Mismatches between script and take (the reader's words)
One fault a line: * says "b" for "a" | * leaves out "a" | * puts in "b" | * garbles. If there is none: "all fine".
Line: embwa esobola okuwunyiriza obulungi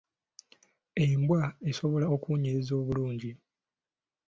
all fine